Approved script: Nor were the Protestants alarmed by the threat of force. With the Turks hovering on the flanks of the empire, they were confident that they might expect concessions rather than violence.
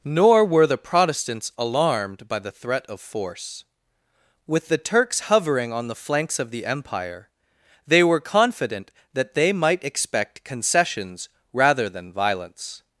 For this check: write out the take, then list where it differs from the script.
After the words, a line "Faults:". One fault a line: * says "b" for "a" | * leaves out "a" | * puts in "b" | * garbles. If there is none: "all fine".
Nor were the Protestants alarmed by the threat of force. With the Turks hovering on the flanks of the empire, they were confident that they might expect concessions rather than violence.
Faults:
all fine